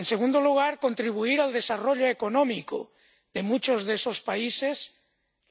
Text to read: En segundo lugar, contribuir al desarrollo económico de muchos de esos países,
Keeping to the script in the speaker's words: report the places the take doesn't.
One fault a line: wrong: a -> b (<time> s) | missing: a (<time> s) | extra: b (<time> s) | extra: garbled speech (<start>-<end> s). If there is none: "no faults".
no faults